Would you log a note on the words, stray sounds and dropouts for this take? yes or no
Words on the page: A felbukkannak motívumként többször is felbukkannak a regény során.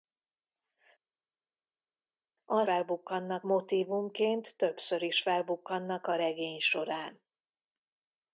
no